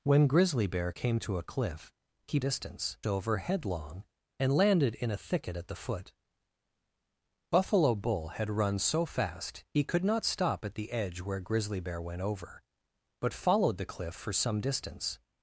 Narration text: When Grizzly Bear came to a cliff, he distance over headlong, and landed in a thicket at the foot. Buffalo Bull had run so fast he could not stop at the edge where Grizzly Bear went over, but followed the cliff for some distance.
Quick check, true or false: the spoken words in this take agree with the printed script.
true